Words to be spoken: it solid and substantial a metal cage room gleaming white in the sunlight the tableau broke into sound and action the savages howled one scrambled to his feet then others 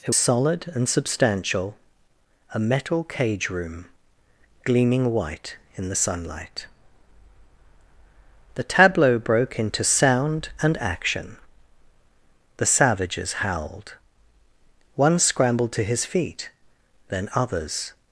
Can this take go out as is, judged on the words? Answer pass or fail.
pass